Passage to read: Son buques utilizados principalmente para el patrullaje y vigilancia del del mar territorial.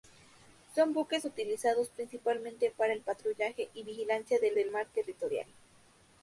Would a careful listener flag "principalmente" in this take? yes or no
no